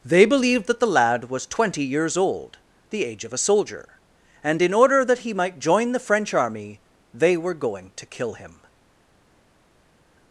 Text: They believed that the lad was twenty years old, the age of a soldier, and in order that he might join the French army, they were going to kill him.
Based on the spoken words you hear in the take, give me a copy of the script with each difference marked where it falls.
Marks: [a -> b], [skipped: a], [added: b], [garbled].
They believed that the lad was twenty years old, the age of a soldier, and in order that he might join the French army, they were going to kill him.